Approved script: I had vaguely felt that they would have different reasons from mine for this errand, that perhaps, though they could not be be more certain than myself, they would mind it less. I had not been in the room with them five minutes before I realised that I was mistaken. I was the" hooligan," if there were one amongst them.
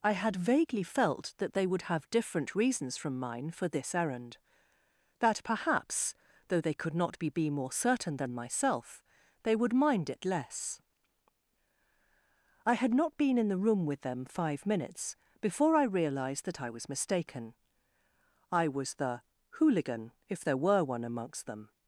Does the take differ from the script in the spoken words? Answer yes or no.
no